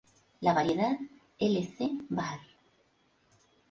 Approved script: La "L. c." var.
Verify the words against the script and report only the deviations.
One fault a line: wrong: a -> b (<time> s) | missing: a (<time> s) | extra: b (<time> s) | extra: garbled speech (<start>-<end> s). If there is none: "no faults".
extra: variedad (0.6 s)